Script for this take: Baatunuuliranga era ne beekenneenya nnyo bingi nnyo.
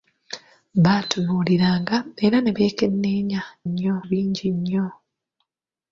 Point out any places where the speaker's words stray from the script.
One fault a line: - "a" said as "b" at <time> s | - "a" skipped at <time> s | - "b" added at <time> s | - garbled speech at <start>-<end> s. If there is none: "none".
none